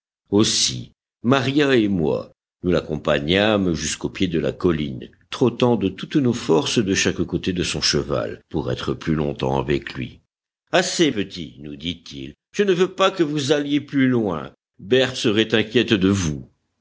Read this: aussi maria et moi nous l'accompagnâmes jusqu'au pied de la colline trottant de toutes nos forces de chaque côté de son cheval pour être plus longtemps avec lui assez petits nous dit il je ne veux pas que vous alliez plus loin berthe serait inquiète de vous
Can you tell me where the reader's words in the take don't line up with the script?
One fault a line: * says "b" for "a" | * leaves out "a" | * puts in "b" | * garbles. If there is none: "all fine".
all fine